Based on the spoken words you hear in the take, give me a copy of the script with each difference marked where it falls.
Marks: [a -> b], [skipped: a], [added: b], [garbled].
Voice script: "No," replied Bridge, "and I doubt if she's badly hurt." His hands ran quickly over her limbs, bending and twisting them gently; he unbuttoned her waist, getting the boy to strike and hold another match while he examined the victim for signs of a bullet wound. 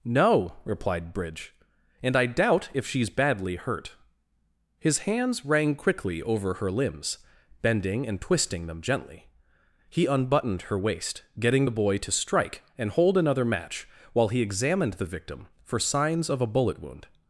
"No," replied Bridge, "and I doubt if she's badly hurt." His hands [ran -> rang] quickly over her limbs, bending and twisting them gently; he unbuttoned her waist, getting the boy to strike and hold another match while he examined the victim for signs of a bullet wound.